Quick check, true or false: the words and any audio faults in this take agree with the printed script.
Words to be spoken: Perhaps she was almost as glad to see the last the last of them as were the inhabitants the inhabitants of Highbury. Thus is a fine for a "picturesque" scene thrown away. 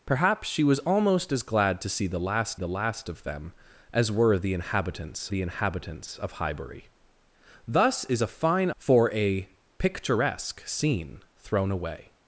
true